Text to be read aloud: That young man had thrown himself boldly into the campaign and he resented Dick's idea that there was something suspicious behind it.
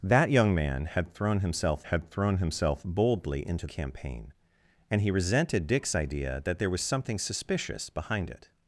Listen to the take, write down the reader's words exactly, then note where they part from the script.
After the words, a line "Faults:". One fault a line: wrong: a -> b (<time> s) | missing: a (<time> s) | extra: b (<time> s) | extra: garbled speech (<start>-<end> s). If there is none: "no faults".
That young man had thrown himself had thrown himself boldly into campaign and he resented Dick's idea that there was something suspicious behind it.
Faults:
extra: had thrown himself (1.8 s)
missing: the (3.7 s)